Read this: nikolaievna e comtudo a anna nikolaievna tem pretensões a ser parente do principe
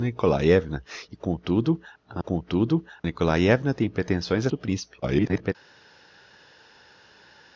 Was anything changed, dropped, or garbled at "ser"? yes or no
yes